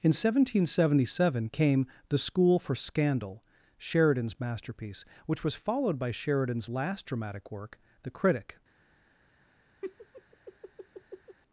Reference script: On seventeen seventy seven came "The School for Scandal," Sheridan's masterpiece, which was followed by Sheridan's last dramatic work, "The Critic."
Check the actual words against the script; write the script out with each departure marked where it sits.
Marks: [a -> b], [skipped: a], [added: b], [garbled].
[On -> In] seventeen seventy seven came "The School for Scandal," Sheridan's masterpiece, which was followed by Sheridan's last dramatic work, "The Critic."